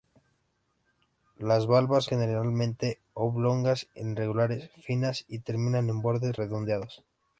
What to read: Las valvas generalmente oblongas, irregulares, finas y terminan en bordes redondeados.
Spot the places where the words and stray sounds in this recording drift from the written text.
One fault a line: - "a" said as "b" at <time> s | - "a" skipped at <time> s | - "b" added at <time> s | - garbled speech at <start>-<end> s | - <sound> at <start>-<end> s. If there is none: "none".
none